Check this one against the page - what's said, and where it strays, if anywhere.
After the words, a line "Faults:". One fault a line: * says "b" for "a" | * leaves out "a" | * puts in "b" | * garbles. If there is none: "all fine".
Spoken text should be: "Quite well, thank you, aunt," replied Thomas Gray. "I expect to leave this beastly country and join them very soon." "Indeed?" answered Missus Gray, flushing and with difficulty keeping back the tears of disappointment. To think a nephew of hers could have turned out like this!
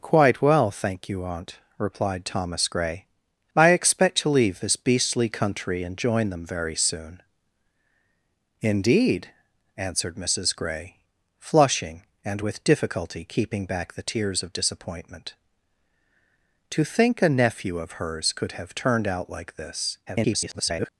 "Quite well, thank you, aunt," replied Thomas Gray. "I expect to leave this beastly country and join them very soon." "Indeed?" answered Missus Gray, flushing and with difficulty keeping back the tears of disappointment. To think a nephew of hers could have turned out like this! [garbled]
Faults:
* garbles